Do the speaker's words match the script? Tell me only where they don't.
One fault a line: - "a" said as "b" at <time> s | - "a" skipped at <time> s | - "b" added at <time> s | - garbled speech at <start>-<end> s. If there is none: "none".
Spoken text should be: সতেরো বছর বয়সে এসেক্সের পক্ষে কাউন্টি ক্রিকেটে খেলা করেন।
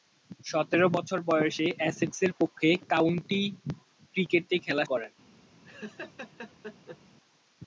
none